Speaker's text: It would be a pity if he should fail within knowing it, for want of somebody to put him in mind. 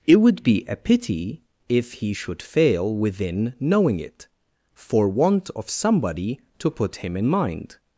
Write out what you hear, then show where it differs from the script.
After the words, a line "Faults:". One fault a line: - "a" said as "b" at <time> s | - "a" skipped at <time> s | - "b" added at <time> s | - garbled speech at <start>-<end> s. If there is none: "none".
It would be a pity if he should fail within knowing it, for want of somebody to put him in mind.
Faults:
none